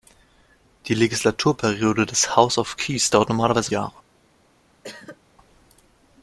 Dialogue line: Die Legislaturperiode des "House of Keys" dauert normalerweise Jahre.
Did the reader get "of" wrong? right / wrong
right